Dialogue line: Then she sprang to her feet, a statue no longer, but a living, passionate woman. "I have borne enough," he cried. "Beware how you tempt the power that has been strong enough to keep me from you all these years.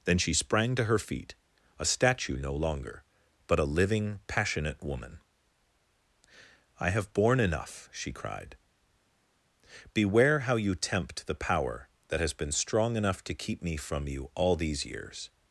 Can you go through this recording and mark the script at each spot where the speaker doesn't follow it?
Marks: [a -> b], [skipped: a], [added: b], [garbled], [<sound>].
Then she sprang to her feet, a statue no longer, but a living, passionate woman. "I have borne enough," [he -> she] cried. "Beware how you tempt the power that has been strong enough to keep me from you all these years.